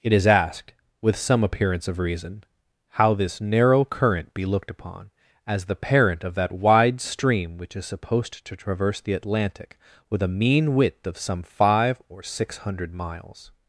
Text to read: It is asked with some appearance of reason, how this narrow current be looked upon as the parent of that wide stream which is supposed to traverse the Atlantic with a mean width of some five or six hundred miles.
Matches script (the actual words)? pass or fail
pass